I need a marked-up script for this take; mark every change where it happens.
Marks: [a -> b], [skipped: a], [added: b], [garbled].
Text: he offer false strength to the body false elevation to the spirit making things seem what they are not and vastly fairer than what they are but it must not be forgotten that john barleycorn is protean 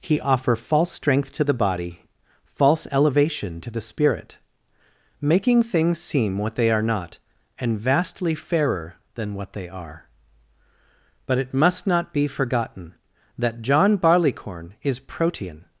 he offer false strength to the body false elevation to the spirit making things seem what they are not and vastly fairer than what they are but it must not be forgotten that john barleycorn is protean